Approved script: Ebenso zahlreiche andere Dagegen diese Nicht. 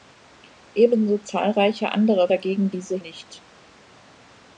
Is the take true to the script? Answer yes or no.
yes